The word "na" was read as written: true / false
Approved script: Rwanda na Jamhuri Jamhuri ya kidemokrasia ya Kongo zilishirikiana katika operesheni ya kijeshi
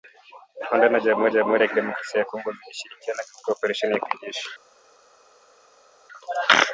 true